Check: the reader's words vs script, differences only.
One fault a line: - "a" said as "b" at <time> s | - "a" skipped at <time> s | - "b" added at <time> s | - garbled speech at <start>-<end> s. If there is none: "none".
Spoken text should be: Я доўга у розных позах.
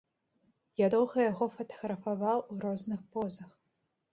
- "яго фатаграфаваў" added at 1.3 s